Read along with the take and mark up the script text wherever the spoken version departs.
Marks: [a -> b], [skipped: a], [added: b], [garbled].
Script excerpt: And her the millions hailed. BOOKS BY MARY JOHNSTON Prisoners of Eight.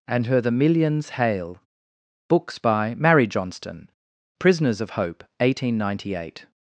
And her the millions [hailed. -> hail] BOOKS BY MARY JOHNSTON Prisoners of [added: Hope eighteen ninety] Eight.